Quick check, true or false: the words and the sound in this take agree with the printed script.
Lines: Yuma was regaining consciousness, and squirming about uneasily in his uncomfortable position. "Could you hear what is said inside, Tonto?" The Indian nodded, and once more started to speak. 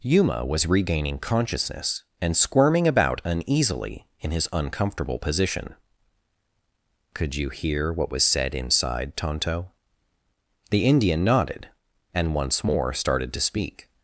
false